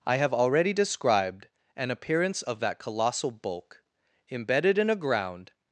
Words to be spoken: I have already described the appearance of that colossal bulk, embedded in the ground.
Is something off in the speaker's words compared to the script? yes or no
yes